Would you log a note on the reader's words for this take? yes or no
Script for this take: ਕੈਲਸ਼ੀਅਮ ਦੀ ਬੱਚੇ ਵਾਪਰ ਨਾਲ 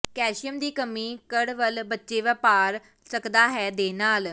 yes